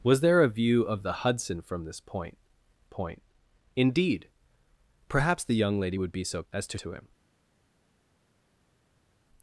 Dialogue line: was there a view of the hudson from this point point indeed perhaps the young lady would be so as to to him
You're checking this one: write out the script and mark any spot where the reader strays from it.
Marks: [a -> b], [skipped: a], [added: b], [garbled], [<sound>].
was there a view of the hudson from this point point indeed perhaps the young lady would be so as to to him